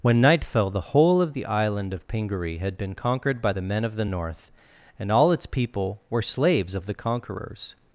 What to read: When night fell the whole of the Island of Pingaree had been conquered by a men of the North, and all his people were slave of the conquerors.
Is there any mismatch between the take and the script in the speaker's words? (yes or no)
yes